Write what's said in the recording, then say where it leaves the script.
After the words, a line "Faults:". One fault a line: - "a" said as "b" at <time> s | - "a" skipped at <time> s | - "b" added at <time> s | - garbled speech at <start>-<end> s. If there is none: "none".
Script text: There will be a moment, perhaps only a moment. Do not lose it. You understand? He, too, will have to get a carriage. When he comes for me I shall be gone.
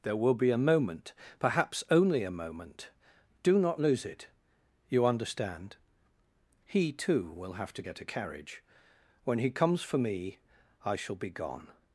There will be a moment, perhaps only a moment. Do not lose it. You understand? He, too, will have to get a carriage. When he comes for me I shall be gone.
Faults:
none